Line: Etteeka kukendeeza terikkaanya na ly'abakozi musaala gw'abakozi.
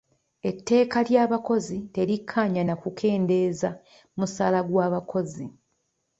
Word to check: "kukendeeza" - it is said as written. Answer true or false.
false